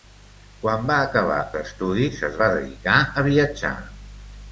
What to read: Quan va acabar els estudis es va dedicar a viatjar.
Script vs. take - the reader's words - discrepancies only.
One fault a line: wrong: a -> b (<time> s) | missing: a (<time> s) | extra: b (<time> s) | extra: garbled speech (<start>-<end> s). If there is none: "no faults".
missing: els (1.4 s)